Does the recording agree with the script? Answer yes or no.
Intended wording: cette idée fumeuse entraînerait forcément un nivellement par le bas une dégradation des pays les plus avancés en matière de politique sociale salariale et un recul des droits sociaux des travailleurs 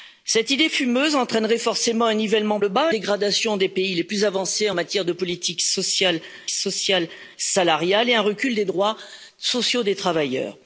no